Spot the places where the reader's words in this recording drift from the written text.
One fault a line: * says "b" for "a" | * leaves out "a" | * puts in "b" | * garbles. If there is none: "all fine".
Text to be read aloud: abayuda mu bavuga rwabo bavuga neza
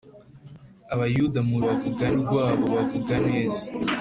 all fine